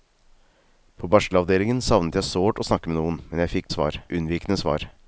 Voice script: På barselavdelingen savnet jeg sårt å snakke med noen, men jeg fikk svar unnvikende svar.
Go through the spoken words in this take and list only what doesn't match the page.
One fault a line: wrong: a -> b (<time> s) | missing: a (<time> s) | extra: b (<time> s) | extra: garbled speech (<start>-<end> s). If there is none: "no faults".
no faults